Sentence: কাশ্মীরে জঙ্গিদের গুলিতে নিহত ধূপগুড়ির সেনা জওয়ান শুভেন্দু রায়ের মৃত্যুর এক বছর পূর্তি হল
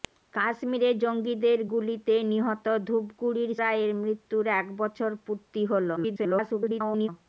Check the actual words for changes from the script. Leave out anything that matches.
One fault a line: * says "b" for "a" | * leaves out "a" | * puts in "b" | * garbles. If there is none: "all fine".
* leaves out "সেনা জওয়ান শুভেন্দু"
* garbles